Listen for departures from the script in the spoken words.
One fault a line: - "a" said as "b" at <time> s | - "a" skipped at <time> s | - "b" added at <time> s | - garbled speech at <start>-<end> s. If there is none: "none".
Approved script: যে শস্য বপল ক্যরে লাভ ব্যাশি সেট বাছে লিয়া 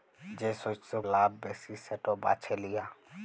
- "বপল ক্যরে" skipped at 0.9 s